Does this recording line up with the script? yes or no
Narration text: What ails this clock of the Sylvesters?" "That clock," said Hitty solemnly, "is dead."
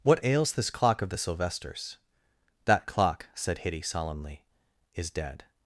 yes